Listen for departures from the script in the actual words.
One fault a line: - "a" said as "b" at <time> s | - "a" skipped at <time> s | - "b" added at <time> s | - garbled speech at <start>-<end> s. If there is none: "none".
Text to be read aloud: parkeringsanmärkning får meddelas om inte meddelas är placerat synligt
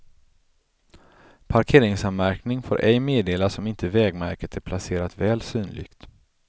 - "ej" added at 2.8 s
- "meddelas" said as "vägmärket" at 3.9 s
- "väl" added at 5.2 s